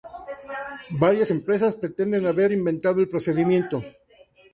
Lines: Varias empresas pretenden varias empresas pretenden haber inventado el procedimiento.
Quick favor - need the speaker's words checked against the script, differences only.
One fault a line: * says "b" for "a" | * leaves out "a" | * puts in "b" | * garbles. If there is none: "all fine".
* leaves out "varias empresas pretenden"